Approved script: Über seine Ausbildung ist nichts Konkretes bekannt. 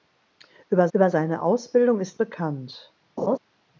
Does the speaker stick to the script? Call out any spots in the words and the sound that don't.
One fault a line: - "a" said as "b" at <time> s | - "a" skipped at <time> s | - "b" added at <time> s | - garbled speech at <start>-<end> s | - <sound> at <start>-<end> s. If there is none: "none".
- "über" added at 0.9 s
- "nichts Konkretes" skipped at 2.2 s
- laugh at 3.2-3.4 s